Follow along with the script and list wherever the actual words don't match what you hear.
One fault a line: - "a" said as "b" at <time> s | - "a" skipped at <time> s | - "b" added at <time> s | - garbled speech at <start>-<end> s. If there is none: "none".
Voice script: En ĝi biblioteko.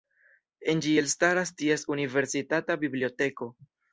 - "elstaras ties universitata" added at 1.0 s